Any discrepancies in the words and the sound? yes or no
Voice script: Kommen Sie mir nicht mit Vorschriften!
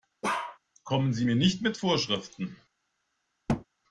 yes